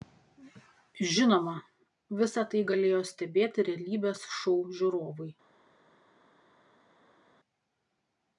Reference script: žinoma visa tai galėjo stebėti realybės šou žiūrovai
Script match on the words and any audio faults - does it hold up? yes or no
yes